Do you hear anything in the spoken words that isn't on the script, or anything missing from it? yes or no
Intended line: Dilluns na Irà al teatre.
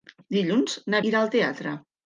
no